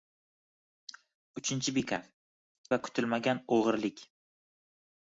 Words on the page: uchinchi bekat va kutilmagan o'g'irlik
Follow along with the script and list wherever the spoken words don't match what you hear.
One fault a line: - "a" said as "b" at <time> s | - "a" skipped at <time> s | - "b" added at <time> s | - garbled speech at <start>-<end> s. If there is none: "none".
none